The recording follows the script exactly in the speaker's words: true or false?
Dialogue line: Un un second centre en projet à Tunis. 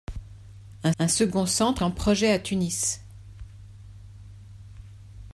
true